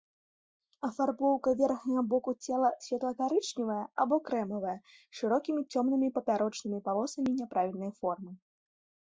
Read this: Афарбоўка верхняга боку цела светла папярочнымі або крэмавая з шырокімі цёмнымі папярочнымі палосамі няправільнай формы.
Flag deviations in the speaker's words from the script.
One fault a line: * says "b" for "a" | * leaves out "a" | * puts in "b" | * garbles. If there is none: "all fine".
* says "карычневая" for "папярочнымі"